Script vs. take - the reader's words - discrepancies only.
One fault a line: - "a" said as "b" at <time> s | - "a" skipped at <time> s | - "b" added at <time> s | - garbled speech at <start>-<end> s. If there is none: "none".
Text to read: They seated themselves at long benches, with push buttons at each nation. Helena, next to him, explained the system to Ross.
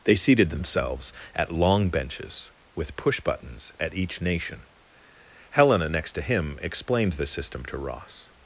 none